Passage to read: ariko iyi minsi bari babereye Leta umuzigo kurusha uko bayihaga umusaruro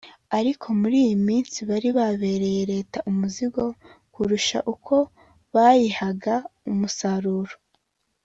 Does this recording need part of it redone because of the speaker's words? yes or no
yes